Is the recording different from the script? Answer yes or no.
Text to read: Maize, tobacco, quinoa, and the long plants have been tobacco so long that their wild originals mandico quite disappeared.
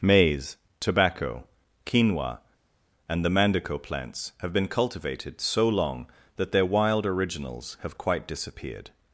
yes